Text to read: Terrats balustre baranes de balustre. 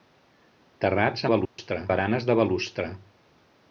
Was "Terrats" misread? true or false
false